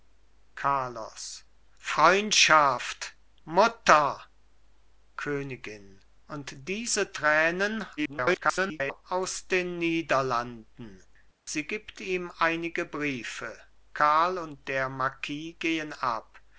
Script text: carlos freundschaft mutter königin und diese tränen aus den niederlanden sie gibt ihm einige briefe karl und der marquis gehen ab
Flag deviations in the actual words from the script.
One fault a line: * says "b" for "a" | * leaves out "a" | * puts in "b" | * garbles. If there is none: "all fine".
* garbles